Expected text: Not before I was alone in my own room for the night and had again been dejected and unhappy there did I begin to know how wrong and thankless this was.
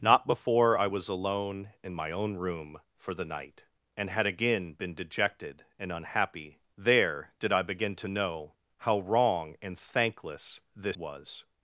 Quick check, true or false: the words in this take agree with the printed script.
true